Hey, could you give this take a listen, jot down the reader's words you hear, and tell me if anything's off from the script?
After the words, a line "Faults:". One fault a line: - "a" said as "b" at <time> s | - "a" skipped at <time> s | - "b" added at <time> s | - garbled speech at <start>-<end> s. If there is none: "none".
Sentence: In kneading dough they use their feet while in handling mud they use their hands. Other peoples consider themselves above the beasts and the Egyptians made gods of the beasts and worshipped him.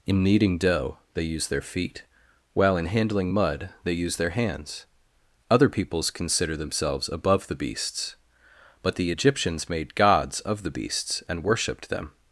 In kneading dough they use their feet while in handling mud they use their hands. Other peoples consider themselves above the beasts but the Egyptians made gods of the beasts and worshipped them.
Faults:
- "and" said as "but" at 8.8 s
- "him" said as "them" at 11.9 s